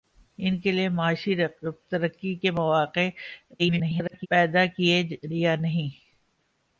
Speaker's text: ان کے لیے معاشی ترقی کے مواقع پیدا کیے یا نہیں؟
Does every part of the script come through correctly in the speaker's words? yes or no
no